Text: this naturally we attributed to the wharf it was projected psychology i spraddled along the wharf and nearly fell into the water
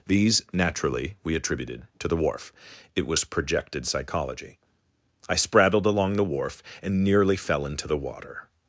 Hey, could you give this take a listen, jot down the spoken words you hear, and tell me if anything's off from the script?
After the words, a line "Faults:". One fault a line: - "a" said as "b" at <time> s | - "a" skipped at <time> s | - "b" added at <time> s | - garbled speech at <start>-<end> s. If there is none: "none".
these naturally we attributed to the wharf it was projected psychology i spraddled along the wharf and nearly fell into the water
Faults:
- "this" said as "these" at 0.1 s